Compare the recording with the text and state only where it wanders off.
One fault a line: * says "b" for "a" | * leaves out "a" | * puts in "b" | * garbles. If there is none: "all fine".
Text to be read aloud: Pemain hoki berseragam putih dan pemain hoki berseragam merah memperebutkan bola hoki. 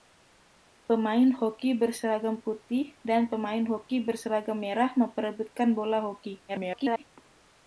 * garbles